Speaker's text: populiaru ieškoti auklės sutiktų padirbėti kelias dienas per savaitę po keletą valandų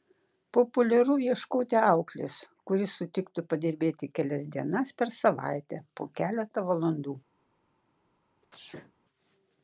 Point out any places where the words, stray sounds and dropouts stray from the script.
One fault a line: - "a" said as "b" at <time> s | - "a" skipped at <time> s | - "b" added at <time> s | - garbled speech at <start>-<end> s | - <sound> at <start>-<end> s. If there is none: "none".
- "kuri" added at 2.7 s
- sneeze at 8.4-8.9 s